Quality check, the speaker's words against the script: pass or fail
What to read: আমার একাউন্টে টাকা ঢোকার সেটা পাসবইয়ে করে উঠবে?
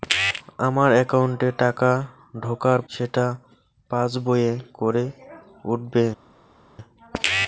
pass